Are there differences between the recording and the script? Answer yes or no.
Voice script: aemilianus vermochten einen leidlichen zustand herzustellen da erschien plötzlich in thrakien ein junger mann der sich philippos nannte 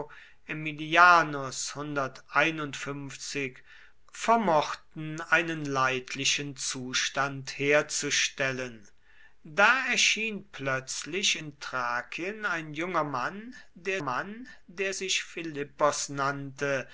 yes